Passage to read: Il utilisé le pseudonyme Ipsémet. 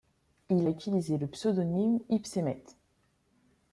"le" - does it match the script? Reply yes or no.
yes